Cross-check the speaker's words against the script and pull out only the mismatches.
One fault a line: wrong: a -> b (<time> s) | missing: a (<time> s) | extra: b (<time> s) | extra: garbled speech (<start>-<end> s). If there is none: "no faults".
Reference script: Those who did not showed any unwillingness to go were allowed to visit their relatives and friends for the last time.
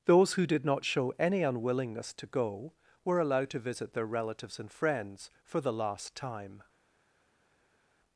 wrong: showed -> show (0.8 s)